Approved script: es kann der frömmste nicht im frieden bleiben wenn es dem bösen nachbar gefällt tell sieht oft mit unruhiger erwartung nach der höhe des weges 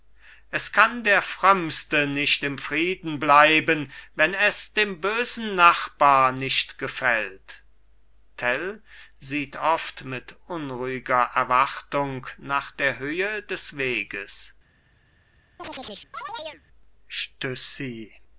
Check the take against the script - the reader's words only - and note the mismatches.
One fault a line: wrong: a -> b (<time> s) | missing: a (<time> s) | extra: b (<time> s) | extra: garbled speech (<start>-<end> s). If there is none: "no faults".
extra: nicht (6.3 s)